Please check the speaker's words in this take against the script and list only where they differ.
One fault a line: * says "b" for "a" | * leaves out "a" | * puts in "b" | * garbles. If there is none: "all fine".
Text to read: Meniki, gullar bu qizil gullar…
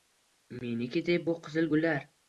* says "deb" for "gullar"